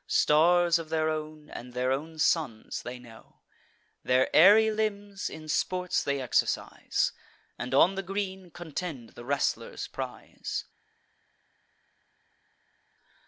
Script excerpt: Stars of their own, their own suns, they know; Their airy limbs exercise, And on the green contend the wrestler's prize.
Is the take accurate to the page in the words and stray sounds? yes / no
no